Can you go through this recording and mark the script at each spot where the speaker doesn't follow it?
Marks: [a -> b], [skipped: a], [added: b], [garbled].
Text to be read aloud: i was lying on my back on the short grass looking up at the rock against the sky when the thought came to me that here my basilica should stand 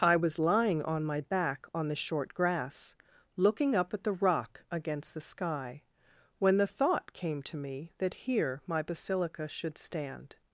i was lying on my back on the short grass looking up at the rock against the sky when the thought came to me that here my basilica should stand